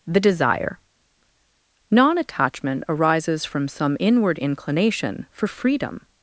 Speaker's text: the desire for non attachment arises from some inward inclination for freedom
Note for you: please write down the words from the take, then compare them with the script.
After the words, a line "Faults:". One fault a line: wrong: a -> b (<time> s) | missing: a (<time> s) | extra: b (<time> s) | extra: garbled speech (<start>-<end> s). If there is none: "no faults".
the desire non attachment arises from some inward inclination for freedom
Faults:
missing: for (0.8 s)